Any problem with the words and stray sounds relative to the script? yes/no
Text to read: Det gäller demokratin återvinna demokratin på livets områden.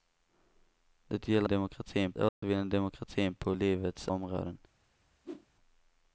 yes